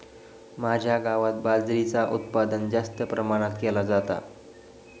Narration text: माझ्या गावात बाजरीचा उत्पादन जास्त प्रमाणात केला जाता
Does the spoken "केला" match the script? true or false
true